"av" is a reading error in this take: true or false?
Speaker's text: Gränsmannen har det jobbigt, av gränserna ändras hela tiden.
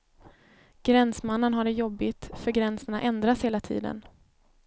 true